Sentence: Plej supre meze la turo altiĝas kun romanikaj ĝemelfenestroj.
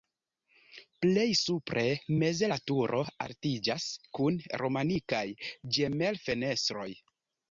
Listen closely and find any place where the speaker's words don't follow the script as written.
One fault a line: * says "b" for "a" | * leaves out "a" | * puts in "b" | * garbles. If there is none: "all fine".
all fine